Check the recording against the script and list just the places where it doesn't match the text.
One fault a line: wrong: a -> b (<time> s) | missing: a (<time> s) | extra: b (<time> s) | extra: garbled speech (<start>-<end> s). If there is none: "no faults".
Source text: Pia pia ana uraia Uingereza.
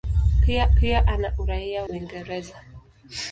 no faults